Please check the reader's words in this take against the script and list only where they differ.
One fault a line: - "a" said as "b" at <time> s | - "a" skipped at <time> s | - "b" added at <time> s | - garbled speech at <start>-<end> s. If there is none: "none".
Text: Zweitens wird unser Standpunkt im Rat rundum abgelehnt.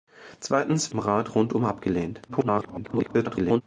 - "wird unser Standpunkt" skipped at 0.9 s
- garbled speech at 2.3-3.6 s